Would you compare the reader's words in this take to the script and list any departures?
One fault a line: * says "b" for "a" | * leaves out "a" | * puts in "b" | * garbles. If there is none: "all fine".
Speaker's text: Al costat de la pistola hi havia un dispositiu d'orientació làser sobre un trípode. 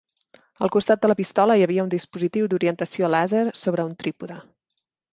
all fine